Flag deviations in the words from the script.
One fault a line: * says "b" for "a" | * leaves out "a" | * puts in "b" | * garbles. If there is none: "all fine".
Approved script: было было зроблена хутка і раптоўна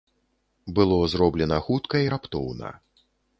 * leaves out "было"